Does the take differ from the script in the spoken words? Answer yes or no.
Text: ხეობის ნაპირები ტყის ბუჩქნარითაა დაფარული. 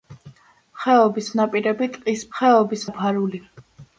yes